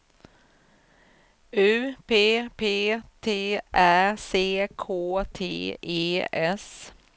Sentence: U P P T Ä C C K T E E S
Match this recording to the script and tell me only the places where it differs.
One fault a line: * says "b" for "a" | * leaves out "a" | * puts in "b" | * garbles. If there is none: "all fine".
* leaves out "C"
* leaves out "E"